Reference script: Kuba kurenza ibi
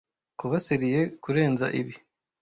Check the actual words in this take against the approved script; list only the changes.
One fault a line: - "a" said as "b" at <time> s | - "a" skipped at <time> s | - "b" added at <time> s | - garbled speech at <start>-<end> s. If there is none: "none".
- "serieux" added at 0.7 s